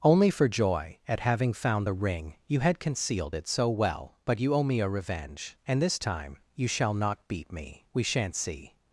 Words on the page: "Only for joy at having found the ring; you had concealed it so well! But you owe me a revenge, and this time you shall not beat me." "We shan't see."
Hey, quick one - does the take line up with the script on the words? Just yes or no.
yes